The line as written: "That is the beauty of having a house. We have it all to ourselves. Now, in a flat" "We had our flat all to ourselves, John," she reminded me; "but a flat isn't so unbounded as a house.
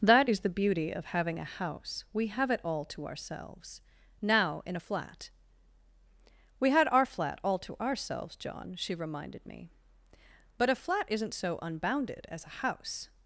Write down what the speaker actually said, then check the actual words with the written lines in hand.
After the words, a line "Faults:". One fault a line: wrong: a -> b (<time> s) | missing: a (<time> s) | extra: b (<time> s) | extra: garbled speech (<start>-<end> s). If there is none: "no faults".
"That is the beauty of having a house. We have it all to ourselves. Now, in a flat" "We had our flat all to ourselves, John," she reminded me; "but a flat isn't so unbounded as a house.
Faults:
no faults